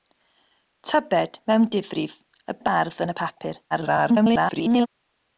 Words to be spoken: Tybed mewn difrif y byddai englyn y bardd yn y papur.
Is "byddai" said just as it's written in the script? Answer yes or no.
no